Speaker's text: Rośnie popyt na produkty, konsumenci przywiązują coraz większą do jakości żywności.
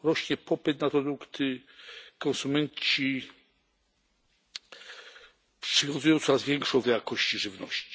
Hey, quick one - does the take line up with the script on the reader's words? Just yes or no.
yes